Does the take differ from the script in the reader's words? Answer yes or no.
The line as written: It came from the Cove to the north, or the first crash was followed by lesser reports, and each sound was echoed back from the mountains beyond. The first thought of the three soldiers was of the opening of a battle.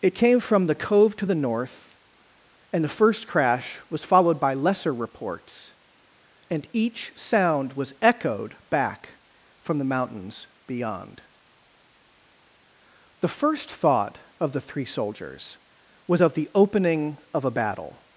yes